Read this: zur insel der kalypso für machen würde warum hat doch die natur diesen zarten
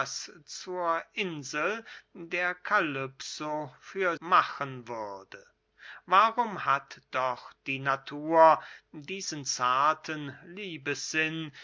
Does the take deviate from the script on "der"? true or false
false